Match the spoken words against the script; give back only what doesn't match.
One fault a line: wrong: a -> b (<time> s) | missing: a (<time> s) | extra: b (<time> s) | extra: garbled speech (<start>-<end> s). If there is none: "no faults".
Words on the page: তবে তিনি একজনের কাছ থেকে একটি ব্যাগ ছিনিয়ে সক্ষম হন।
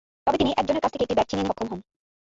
no faults